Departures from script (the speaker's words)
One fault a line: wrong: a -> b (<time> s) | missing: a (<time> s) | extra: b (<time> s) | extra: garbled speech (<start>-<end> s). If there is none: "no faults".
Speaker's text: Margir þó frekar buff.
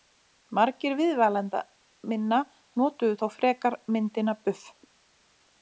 extra: viðmælenda minna notuðu (1.0 s)
extra: myndina (4.0 s)